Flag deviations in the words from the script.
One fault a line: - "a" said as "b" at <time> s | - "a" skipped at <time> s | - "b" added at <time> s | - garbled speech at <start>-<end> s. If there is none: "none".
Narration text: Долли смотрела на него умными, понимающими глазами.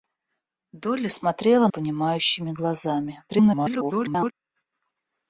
- "на него умными" skipped at 1.7 s
- garbled speech at 3.3-4.3 s